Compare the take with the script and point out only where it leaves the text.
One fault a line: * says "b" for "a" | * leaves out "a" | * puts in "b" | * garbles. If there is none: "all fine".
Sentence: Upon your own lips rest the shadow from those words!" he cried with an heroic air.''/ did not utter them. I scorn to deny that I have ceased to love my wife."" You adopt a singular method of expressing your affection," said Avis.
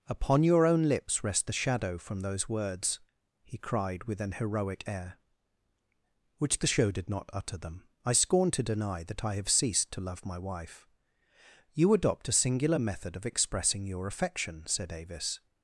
* puts in "which the show"